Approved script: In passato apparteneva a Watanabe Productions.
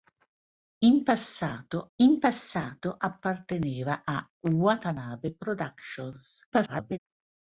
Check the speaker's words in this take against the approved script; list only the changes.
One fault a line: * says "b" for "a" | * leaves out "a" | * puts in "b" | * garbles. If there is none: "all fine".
* puts in "in passato"
* garbles